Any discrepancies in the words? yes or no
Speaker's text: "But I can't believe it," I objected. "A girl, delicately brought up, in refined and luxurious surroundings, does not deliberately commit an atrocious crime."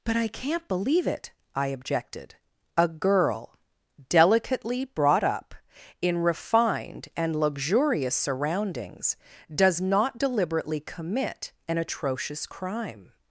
no